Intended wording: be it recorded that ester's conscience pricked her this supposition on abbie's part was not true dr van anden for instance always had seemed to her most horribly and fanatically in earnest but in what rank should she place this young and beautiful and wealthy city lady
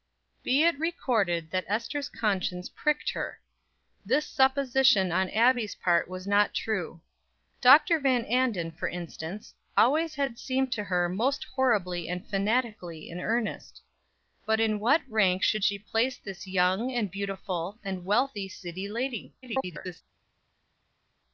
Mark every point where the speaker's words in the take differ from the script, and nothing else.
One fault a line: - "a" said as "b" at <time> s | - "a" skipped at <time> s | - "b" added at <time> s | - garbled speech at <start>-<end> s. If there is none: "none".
- garbled speech at 19.4-20.0 s